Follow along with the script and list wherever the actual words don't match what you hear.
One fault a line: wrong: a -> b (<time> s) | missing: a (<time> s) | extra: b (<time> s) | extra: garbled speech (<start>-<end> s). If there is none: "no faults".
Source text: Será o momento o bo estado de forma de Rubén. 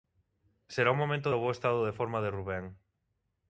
no faults